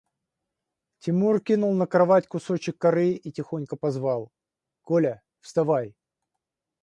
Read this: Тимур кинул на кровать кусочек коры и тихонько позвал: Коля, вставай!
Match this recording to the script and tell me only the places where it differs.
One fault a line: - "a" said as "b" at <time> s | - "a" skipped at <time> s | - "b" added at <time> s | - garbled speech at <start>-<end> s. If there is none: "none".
none